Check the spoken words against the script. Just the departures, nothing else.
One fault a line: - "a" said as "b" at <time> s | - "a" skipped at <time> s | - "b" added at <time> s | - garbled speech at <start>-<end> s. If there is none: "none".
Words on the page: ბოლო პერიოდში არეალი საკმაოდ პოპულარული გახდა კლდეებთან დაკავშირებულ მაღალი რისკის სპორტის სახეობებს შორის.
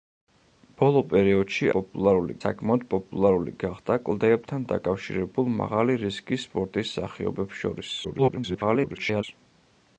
- "არეალი" said as "პოპულარული" at 1.8 s
- garbled speech at 8.0-9.2 s